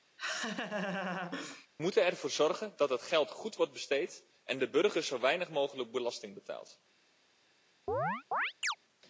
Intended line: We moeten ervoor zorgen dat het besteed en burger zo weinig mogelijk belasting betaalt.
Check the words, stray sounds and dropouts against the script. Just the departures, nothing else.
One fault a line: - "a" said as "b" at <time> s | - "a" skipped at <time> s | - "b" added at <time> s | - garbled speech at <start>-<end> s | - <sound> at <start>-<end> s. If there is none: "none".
- laugh at 0.2-1.7 s
- "geld goed wordt" added at 3.0 s
- "de" added at 4.6 s
- chirp at 7.9-8.8 s